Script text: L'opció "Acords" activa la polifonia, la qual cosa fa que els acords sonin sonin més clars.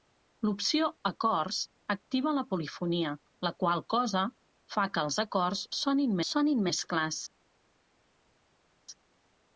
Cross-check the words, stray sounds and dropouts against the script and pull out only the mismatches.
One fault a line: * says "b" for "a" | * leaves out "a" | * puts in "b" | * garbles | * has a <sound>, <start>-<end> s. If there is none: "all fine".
all fine